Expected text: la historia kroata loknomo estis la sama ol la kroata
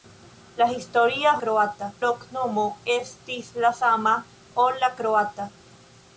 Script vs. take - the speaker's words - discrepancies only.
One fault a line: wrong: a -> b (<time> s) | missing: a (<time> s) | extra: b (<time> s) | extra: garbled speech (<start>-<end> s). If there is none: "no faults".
no faults